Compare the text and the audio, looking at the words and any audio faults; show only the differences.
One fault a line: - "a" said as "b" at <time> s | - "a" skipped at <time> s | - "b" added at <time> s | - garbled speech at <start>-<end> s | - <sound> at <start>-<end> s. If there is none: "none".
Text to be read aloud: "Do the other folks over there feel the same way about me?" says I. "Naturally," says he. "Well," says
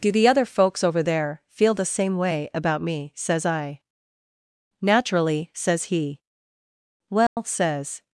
- dropout at 7.3-7.4 s